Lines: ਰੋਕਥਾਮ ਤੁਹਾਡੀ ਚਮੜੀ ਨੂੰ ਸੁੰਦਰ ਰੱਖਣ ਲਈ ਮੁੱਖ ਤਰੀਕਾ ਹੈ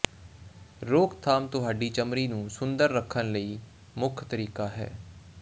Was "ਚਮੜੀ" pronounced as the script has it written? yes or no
yes